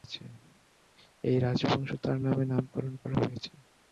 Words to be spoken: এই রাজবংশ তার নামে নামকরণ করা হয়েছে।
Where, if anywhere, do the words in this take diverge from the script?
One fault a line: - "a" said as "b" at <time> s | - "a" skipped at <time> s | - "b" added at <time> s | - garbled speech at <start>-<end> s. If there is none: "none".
none